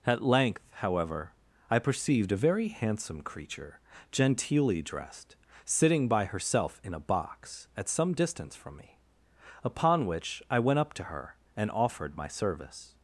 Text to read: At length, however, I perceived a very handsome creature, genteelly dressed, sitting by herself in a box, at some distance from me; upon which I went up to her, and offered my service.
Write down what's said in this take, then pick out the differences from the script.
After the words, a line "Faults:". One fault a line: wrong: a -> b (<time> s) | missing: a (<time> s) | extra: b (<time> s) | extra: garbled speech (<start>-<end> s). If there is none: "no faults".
At length, however, I perceived a very handsome creature, genteelly dressed, sitting by herself in a box, at some distance from me; upon which I went up to her, and offered my service.
Faults:
no faults